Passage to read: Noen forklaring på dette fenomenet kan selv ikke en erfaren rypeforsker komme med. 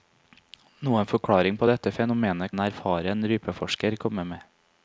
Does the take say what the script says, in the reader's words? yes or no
no